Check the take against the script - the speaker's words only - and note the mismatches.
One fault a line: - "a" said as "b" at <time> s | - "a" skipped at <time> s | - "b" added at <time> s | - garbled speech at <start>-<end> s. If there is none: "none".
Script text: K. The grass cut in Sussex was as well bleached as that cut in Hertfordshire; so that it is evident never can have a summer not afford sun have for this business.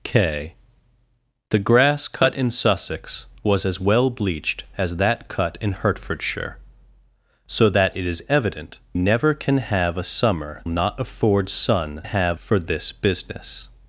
none